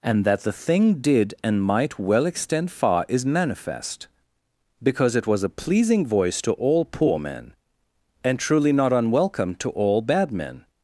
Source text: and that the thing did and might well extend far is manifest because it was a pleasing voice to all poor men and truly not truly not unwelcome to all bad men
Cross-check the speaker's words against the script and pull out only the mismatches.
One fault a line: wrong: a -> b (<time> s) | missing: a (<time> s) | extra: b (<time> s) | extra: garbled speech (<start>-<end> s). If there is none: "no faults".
missing: truly not (8.9 s)